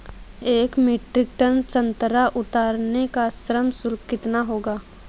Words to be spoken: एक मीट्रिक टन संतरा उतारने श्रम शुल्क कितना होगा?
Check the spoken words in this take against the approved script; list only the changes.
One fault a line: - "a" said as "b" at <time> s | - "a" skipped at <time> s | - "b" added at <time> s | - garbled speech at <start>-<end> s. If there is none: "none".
- "का" added at 3.1 s